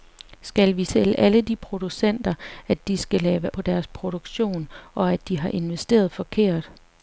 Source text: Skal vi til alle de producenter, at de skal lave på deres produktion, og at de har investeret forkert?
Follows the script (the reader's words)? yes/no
yes